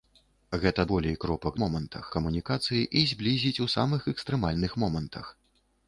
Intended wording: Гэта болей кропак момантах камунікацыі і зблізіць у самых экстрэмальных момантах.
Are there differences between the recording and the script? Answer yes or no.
no